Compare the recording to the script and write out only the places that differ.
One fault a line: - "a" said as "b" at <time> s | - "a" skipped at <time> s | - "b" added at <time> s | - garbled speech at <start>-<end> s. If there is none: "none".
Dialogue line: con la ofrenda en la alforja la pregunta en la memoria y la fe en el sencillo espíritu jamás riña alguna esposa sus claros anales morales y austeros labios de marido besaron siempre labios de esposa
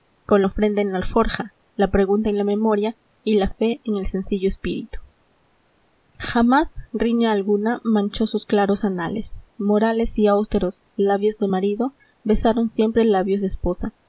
- "esposa" said as "manchó" at 7.8 s